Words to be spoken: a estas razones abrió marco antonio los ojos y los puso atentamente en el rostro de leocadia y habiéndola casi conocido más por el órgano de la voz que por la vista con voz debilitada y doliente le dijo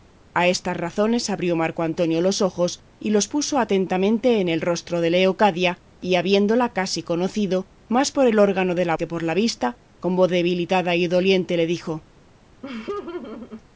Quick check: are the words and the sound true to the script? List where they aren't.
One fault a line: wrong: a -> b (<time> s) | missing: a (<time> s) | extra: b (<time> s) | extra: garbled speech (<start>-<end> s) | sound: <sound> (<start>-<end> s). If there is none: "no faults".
missing: voz (8.9 s)
sound: laugh (12.6-13.6 s)